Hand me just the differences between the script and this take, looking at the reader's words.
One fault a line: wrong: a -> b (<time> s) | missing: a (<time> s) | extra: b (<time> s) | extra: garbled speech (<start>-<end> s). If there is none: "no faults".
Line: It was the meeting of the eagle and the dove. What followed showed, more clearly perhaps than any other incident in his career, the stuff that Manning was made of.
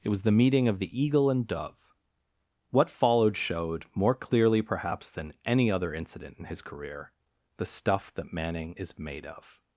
missing: the (1.4 s)
wrong: was -> is (8.8 s)